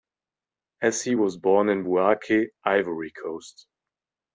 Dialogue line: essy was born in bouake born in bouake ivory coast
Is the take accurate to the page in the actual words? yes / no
no